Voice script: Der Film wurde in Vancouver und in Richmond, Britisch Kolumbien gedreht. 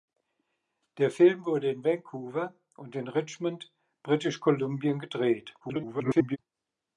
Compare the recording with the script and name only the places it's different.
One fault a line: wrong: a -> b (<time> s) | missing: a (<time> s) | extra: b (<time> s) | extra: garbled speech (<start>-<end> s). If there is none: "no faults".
extra: garbled speech (5.6-6.4 s)